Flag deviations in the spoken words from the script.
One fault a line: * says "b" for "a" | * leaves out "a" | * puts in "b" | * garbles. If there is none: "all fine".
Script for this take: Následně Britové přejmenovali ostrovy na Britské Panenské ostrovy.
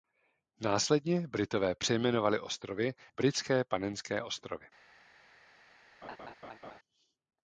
* leaves out "na"